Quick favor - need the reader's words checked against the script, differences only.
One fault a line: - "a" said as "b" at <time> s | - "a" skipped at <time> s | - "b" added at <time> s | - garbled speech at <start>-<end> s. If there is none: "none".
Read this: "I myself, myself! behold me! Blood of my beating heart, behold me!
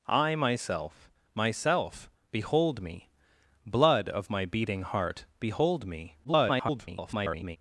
- garbled speech at 6.2-7.6 s